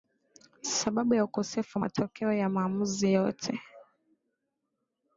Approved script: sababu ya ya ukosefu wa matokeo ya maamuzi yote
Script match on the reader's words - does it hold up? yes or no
no